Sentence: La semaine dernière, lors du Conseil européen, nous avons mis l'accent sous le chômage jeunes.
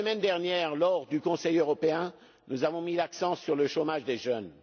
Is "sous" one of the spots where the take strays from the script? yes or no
yes